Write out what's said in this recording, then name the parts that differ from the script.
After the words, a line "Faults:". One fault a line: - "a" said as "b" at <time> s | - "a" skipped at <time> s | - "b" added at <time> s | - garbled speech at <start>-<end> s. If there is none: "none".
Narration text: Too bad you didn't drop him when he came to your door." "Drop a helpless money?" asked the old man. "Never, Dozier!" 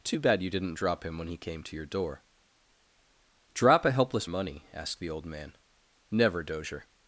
Too bad you didn't drop him when he came to your door." "Drop a helpless money?" asked the old man. "Never, Dozier!"
Faults:
none